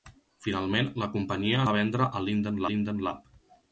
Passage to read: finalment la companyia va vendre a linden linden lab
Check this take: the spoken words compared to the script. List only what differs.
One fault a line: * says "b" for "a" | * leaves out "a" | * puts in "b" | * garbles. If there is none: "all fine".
all fine